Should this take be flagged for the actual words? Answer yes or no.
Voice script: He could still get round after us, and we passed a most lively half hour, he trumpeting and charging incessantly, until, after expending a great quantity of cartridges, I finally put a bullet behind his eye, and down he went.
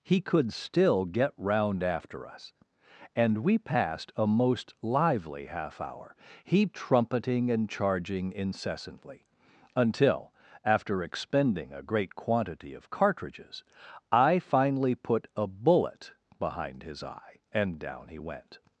no